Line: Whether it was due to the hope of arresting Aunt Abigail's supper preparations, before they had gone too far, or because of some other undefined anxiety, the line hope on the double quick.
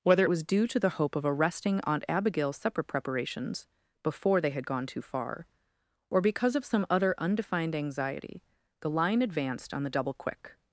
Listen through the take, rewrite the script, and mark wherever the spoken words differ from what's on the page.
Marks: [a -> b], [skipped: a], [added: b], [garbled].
Whether it was due to the hope of arresting Aunt Abigail's supper preparations, before they had gone too far, or because of some other undefined anxiety, the line [hope -> advanced] on the double quick.